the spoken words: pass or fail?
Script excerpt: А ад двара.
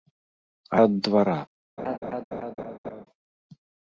pass